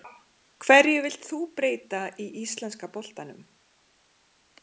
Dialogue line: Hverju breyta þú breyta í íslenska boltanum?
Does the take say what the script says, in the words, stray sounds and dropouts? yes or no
no